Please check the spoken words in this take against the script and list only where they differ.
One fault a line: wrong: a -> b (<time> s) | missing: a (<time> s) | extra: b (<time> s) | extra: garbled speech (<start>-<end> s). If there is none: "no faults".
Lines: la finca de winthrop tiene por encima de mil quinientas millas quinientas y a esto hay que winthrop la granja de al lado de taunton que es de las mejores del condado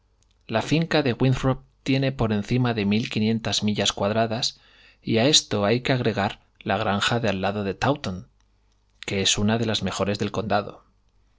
wrong: quinientas -> cuadradas (3.9 s)
wrong: winthrop -> agregar (5.9 s)
extra: una (9.4 s)